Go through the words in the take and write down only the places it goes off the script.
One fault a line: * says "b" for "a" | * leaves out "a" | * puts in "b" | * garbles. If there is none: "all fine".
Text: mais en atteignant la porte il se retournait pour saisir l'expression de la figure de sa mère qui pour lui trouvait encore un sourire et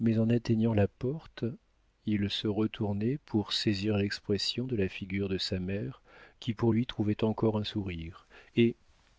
all fine